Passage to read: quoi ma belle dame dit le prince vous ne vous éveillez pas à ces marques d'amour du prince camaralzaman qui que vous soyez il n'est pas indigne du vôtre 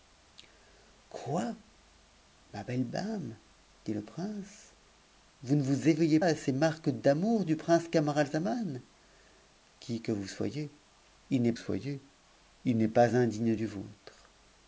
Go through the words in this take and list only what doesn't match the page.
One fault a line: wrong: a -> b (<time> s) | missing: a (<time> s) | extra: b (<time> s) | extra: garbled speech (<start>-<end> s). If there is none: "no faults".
missing: pas (6.2 s)
extra: soyez il n'est (11.5 s)